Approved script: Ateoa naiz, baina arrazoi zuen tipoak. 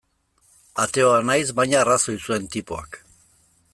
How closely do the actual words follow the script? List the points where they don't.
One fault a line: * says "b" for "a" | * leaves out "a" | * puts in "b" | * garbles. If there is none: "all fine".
all fine